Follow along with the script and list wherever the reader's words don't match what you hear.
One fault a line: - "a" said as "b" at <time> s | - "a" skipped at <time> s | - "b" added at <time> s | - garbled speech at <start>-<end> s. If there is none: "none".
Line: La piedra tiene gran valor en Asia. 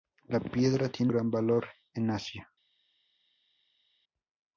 none